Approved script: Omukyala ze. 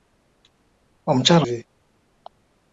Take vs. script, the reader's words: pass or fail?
pass